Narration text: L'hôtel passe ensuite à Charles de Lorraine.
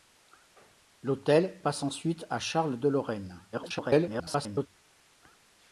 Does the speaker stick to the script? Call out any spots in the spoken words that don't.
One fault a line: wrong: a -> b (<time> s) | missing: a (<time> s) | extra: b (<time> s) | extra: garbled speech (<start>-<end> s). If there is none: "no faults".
extra: garbled speech (3.5-4.7 s)